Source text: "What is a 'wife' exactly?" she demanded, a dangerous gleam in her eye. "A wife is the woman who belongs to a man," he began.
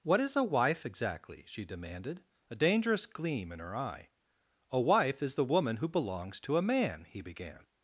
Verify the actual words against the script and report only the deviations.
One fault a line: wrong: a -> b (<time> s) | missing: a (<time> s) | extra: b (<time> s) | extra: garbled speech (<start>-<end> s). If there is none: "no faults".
no faults